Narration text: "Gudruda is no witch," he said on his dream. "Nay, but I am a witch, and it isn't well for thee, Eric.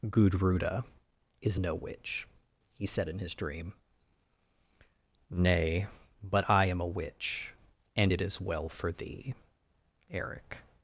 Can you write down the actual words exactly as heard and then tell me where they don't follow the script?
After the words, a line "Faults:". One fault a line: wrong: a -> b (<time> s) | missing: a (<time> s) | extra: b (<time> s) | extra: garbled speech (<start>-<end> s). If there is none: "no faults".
"Gudruda is no witch," he said in his dream. "Nay, but I am a witch, and it is well for thee, Eric.
Faults:
wrong: on -> in (3.1 s)
wrong: isn't -> is (8.2 s)